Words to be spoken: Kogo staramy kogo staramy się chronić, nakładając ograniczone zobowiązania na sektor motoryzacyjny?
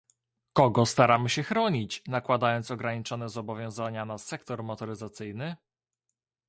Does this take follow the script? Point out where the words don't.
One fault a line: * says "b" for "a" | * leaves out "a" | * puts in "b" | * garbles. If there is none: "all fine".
* leaves out "kogo staramy"